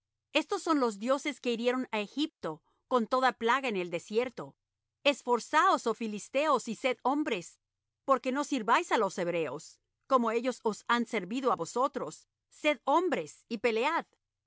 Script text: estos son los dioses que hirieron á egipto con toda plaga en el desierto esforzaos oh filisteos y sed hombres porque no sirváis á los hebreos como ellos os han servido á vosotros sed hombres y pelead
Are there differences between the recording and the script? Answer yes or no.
no